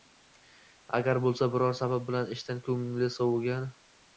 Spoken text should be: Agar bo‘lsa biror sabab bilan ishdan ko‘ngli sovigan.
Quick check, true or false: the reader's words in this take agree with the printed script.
true